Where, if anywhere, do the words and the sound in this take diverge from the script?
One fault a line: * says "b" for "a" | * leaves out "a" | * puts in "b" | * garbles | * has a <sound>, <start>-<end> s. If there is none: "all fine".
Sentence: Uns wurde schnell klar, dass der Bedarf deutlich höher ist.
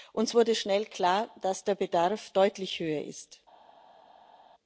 all fine